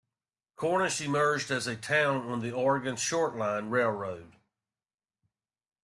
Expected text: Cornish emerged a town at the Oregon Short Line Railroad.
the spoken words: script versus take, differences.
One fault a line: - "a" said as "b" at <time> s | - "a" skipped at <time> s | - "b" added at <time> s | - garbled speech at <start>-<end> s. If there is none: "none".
- "as" added at 1.5 s
- "at" said as "on" at 2.2 s